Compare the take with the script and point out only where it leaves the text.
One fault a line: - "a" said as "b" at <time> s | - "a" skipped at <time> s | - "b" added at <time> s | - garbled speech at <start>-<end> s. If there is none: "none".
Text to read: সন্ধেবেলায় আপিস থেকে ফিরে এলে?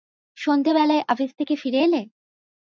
none